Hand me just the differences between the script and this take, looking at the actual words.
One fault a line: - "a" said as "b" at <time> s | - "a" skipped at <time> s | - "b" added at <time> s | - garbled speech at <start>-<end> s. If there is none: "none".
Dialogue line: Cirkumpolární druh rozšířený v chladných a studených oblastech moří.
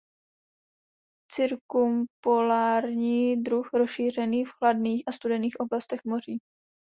none